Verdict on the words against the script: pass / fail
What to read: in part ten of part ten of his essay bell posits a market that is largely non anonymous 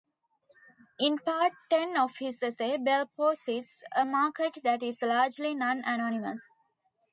fail